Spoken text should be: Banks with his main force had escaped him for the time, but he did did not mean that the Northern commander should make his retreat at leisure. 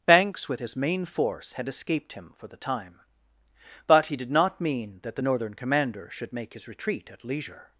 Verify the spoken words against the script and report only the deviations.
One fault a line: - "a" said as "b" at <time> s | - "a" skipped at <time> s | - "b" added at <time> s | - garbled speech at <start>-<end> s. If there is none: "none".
- "did" skipped at 4.3 s